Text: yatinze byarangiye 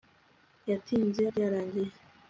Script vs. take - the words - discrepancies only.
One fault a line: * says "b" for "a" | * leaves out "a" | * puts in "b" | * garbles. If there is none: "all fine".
all fine